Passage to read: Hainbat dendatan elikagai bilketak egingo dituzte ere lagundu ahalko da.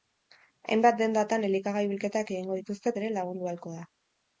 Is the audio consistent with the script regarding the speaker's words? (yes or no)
yes